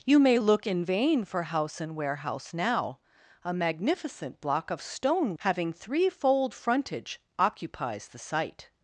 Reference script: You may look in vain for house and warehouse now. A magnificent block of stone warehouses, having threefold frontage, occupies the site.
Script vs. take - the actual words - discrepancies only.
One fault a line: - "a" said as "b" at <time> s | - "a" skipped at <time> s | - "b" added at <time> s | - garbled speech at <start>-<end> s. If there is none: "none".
- "warehouses" skipped at 5.3 s